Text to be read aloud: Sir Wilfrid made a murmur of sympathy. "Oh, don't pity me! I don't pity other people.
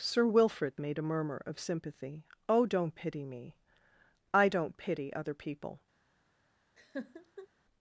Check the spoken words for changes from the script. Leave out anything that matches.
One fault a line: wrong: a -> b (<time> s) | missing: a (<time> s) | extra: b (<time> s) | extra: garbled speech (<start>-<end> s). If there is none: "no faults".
no faults